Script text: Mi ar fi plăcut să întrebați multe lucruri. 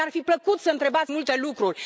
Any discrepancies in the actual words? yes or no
no